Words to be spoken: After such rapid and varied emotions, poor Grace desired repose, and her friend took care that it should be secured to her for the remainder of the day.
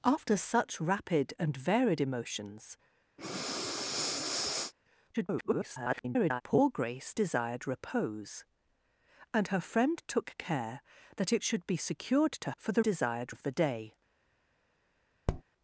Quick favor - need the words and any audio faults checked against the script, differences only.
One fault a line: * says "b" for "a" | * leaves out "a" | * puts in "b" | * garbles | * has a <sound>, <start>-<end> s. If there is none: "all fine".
* has a breath, 3.2-4.7 s
* garbles
* leaves out "her"
* says "desired" for "remainder"
* has a tap, 15.3-15.4 s